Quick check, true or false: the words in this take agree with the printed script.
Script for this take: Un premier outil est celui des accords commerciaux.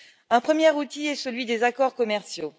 true